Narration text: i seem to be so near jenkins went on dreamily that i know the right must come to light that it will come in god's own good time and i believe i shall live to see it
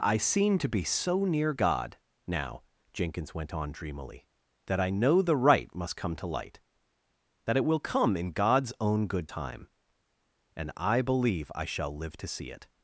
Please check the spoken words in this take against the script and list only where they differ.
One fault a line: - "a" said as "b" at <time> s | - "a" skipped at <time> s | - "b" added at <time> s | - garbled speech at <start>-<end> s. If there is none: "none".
- "god now" added at 1.5 s